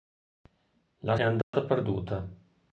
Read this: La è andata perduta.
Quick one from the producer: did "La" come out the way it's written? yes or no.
yes